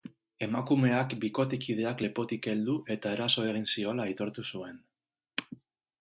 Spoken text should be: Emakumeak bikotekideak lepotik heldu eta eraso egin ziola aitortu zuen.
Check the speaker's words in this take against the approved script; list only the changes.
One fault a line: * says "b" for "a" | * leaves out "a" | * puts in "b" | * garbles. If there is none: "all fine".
all fine